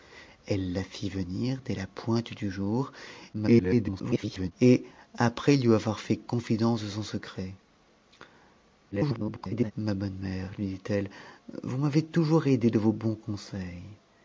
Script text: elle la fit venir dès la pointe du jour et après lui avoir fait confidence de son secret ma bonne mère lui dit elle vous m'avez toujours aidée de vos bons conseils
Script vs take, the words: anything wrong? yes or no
yes